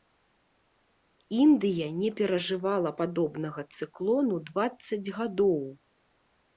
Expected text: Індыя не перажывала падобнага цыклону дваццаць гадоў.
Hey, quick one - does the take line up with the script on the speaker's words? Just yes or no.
yes